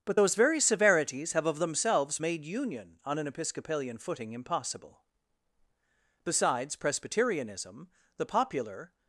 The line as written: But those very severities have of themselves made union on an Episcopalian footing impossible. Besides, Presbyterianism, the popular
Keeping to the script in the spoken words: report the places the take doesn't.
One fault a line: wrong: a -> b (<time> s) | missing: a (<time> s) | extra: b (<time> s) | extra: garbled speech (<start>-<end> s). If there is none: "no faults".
no faults